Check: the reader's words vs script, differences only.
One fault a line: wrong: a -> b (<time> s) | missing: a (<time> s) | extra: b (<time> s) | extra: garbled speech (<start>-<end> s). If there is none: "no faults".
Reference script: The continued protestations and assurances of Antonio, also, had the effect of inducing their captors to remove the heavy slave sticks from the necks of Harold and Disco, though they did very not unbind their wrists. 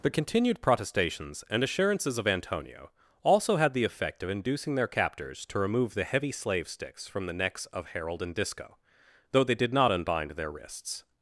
missing: very (9.7 s)